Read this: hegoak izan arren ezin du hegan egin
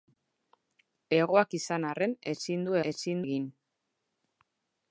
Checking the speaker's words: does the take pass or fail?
fail